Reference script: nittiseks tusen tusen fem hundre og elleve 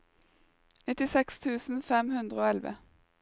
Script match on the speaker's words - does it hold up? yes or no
no